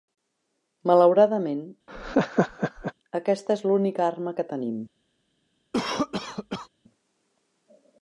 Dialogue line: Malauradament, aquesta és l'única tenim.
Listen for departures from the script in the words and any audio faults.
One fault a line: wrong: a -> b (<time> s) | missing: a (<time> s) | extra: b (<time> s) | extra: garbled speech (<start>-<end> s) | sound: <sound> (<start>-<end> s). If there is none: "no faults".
sound: laugh (1.9-2.9 s)
extra: arma que (4.1 s)
sound: cough (5.7-6.7 s)